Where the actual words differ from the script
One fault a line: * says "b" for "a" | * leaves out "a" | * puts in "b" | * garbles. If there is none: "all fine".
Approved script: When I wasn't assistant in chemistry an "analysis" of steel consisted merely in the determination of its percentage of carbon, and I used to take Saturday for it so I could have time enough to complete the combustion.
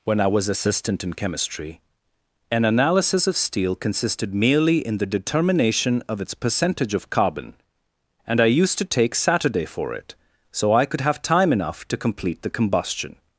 * says "was" for "wasn't"